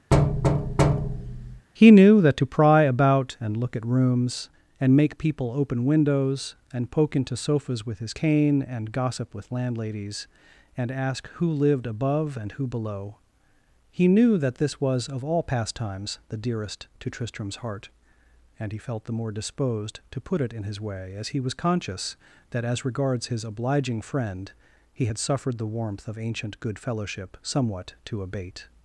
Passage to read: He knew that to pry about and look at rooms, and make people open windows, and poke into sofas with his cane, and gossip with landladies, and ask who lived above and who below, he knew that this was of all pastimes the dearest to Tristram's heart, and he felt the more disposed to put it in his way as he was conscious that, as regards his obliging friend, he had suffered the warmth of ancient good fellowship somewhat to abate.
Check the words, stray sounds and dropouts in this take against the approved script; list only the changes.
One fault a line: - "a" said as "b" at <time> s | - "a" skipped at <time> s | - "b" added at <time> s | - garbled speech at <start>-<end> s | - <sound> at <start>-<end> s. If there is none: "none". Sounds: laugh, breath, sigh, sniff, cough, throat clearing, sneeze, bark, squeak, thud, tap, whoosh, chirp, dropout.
- thud at 0.1-1.7 s